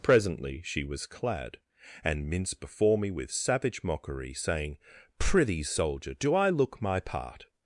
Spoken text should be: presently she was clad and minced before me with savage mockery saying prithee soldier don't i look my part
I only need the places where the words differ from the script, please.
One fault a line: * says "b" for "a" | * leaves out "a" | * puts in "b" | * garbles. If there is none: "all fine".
* says "do" for "don't"